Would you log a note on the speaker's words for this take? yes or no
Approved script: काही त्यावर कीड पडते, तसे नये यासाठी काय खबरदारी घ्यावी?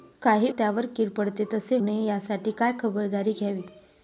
no